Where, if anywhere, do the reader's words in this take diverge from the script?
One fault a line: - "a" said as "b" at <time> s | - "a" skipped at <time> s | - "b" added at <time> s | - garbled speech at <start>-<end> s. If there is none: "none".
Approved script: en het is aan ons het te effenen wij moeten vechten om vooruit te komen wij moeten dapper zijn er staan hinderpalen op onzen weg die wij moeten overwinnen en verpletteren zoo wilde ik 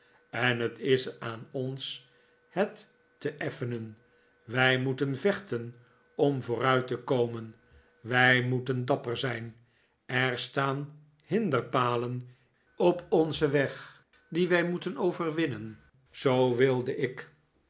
- "en verpletteren" skipped at 15.8 s